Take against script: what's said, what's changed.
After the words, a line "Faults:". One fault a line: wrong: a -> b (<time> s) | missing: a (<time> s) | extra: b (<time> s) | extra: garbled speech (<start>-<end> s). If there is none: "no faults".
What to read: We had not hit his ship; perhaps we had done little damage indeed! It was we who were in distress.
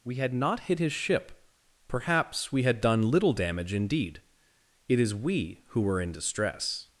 We had not hit his ship; perhaps we had done little damage indeed! It is we who were in distress.
Faults:
wrong: was -> is (5.0 s)